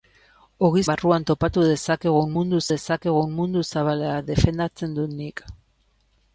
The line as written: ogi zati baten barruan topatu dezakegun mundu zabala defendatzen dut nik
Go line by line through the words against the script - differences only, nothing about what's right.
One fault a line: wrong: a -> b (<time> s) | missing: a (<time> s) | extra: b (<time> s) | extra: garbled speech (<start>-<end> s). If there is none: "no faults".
wrong: zati baten barruan topatu -> barruan topatu dezakegun mundu (0.9 s)